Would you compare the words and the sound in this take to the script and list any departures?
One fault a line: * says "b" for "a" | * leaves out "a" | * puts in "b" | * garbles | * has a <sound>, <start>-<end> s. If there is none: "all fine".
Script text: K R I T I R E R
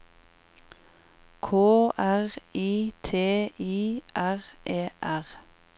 all fine